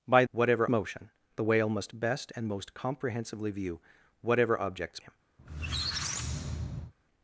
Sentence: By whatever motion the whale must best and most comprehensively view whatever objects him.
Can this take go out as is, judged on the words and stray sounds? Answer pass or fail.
fail